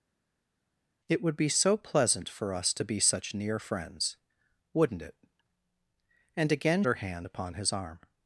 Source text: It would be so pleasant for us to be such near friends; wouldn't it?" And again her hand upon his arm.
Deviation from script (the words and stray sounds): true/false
false